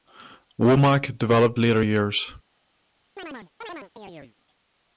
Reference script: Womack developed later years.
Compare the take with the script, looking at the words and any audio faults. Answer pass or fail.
fail